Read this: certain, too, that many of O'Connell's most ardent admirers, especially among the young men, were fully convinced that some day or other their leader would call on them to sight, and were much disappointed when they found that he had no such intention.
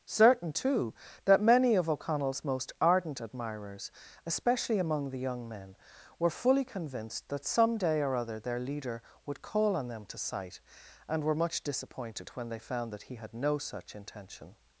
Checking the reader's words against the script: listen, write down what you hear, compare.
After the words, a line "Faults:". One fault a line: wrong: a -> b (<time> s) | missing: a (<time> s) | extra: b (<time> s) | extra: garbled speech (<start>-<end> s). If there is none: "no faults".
certain, too, that many of O'Connell's most ardent admirers, especially among the young men, were fully convinced that some day or other their leader would call on them to sight, and were much disappointed when they found that he had no such intention.
Faults:
no faults